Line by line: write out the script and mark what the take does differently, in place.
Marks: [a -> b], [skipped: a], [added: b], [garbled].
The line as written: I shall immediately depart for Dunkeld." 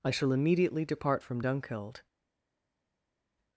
I shall immediately depart [for -> from] Dunkeld."